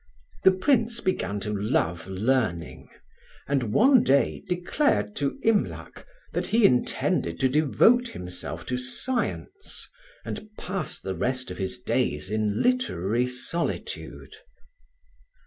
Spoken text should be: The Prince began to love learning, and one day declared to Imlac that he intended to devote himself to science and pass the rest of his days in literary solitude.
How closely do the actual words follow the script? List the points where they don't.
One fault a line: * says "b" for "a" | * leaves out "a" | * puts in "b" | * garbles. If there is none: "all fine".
all fine